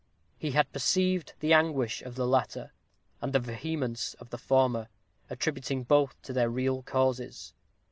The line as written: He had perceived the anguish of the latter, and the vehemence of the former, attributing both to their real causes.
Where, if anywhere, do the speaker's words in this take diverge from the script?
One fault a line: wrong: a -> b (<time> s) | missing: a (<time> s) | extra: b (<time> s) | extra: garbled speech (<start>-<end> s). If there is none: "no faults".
no faults